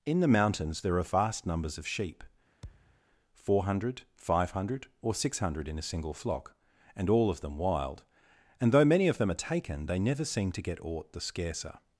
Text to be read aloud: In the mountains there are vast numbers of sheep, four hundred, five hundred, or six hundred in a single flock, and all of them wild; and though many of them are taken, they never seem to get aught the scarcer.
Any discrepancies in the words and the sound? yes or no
yes